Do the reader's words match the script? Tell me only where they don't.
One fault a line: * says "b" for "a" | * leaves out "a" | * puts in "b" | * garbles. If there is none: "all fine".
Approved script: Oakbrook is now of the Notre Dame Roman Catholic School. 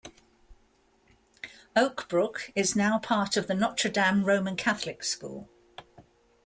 * puts in "part"